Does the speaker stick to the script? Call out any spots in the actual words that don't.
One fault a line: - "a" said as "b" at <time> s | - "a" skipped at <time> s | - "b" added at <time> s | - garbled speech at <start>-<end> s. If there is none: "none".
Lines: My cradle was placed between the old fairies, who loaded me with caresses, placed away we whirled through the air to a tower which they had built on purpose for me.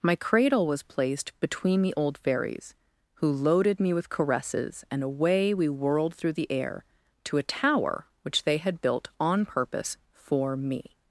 - "placed" said as "and" at 4.9 s